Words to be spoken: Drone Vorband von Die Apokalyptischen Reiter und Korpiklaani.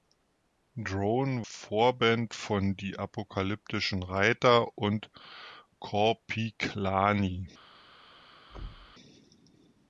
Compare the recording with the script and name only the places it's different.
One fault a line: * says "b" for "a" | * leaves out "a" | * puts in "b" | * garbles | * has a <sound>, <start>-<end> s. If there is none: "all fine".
* has a thud, 8.5-9.0 s